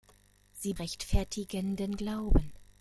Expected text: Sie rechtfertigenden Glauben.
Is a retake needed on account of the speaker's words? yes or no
no